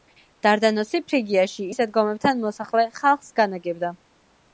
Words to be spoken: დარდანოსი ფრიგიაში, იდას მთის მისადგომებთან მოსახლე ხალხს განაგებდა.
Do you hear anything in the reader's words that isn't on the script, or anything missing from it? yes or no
yes